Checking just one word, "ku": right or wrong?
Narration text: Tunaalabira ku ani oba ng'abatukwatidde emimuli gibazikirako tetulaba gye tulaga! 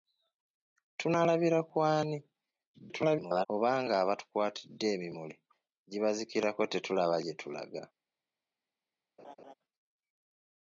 right